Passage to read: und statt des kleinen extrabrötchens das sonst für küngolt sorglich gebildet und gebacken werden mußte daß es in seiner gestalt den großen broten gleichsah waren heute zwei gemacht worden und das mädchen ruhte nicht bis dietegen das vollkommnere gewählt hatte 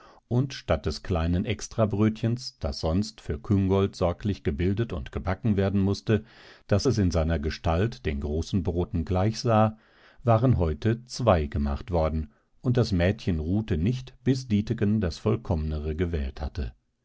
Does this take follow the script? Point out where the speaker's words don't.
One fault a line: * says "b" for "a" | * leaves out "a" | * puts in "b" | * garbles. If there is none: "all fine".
all fine